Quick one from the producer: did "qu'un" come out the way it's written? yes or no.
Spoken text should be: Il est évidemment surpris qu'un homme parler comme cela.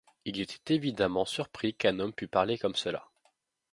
yes